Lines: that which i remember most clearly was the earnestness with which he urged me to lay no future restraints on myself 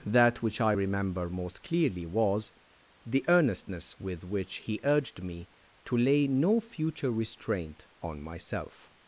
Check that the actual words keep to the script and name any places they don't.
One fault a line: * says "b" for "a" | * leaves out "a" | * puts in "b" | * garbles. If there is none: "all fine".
* says "restraint" for "restraints"